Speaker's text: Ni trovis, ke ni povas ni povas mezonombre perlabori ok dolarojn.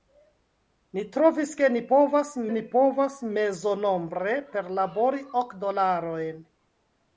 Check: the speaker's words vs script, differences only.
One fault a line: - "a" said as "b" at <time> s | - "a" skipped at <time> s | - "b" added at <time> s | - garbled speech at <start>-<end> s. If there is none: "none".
none